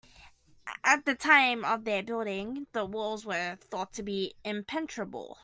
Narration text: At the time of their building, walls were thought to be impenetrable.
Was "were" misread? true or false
false